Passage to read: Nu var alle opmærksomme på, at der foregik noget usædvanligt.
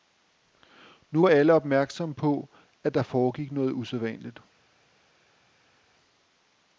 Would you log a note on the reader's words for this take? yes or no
no